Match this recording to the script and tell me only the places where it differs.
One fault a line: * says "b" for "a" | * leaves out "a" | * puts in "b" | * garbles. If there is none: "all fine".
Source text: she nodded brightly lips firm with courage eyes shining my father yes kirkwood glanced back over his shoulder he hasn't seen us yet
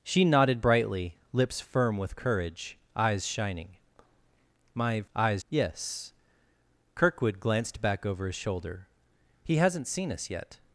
* says "eyes" for "father"